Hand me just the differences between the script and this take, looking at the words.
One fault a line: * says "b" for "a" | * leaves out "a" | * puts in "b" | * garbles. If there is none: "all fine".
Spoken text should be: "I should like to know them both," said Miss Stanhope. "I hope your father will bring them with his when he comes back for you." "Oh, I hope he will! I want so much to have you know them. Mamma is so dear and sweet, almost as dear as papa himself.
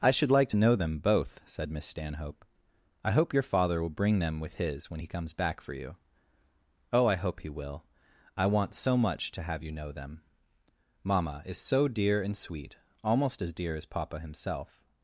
all fine